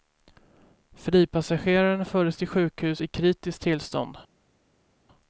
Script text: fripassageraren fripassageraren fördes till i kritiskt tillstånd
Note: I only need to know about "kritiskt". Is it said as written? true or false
true